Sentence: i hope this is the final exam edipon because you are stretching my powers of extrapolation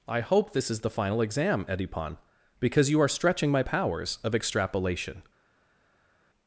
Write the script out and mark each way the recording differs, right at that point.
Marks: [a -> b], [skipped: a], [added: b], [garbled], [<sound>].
i hope this is the final exam edipon because you are stretching my powers of extrapolation